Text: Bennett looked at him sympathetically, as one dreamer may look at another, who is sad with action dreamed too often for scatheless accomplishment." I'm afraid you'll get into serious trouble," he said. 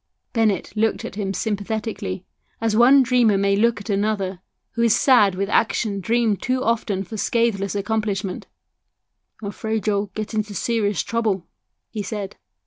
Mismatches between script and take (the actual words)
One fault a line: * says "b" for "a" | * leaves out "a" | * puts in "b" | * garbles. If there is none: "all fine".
all fine